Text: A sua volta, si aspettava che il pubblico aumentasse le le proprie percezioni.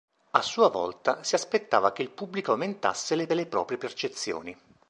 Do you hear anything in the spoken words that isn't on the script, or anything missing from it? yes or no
no